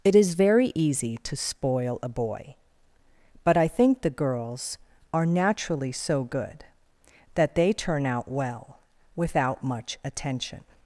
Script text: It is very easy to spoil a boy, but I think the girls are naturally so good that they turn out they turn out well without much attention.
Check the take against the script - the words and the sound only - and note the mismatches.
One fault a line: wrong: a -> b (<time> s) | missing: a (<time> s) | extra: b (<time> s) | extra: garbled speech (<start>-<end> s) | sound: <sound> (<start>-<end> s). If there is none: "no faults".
missing: they turn out (8.3 s)